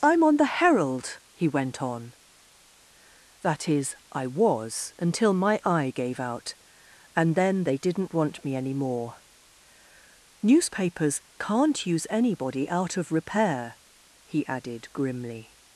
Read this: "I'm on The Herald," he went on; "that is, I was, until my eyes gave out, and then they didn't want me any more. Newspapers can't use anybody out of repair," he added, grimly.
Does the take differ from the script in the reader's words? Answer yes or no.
yes